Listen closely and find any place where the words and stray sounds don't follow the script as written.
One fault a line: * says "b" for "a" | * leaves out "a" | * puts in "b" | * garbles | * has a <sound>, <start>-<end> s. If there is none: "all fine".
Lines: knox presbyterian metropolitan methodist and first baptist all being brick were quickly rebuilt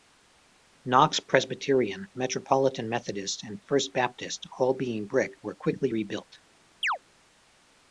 * has a chirp, 6.8-7.0 s